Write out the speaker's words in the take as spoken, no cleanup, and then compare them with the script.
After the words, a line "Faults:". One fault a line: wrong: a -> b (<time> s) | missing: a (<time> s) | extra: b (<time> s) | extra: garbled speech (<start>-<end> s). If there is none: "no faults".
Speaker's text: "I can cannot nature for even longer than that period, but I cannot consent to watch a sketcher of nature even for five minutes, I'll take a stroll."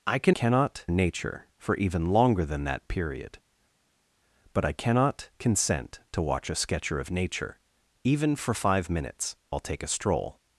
"I can cannot nature for even longer than that period, but I cannot consent to watch a sketcher of nature even for five minutes, I'll take a stroll."
Faults:
no faults